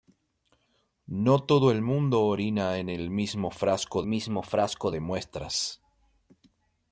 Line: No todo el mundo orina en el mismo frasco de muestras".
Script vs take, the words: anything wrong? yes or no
yes